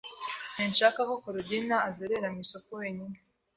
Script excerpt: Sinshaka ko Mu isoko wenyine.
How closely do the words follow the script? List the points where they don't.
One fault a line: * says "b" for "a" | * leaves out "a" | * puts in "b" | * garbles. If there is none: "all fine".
* puts in "Korodina azerera"